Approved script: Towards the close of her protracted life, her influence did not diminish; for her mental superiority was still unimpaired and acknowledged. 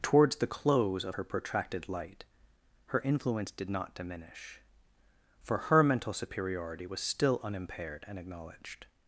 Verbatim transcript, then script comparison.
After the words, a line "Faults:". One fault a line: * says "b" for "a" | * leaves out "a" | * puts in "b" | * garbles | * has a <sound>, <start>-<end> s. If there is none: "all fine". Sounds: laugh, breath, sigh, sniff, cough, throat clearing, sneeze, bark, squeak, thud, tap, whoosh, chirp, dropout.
Towards the close of her protracted light, her influence did not diminish; for her mental superiority was still unimpaired and acknowledged.
Faults:
* says "light" for "life"